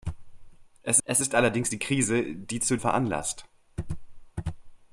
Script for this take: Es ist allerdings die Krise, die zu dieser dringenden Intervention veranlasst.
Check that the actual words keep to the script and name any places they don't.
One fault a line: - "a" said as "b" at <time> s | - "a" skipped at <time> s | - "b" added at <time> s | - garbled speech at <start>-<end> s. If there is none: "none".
- "es" added at 1.0 s
- "dieser dringenden Intervention" skipped at 2.8 s